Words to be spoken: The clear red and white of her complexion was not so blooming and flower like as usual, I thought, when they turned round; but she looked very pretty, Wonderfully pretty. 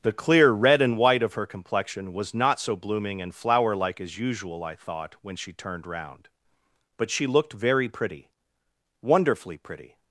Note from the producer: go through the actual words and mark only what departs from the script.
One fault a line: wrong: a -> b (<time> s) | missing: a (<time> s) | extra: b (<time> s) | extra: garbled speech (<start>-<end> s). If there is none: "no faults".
wrong: they -> she (5.3 s)